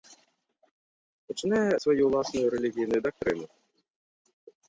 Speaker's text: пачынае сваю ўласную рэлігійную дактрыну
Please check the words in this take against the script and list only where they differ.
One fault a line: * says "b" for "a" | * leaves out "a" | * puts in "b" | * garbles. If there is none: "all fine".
all fine